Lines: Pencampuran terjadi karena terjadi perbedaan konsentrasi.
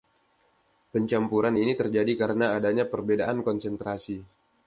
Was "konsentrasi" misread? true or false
false